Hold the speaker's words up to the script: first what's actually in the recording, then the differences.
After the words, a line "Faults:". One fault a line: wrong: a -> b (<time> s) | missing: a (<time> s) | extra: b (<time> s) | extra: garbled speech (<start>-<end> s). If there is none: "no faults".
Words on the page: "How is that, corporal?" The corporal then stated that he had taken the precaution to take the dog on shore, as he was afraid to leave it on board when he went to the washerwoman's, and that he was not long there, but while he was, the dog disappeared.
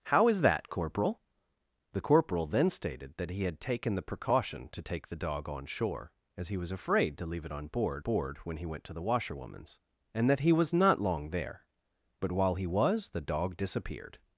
"How is that, corporal?" The corporal then stated that he had taken the precaution to take the dog on shore, as he was afraid to leave it on board board when he went to the washerwoman's, and that he was not long there, but while he was, the dog disappeared.
Faults:
extra: board (8.0 s)